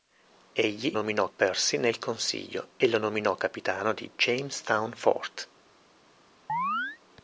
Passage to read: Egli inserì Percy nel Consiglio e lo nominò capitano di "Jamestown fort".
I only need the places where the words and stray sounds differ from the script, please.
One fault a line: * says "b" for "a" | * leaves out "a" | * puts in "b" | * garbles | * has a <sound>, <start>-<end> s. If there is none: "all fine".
* says "nominò" for "inserì"
* has a chirp, 6.5-7.0 s